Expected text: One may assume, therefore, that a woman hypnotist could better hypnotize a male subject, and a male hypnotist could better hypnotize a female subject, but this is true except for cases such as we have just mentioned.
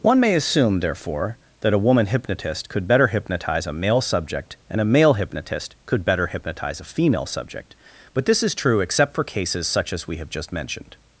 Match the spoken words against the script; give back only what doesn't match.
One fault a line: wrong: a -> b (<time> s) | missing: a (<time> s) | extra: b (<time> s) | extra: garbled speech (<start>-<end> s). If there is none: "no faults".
no faults